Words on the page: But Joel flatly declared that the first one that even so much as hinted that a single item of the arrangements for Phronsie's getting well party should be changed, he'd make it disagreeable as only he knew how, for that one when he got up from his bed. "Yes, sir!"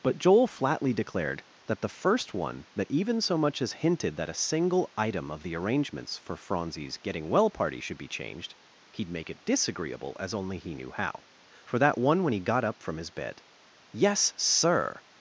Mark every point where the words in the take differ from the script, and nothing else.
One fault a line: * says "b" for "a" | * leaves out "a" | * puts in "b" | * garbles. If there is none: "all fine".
all fine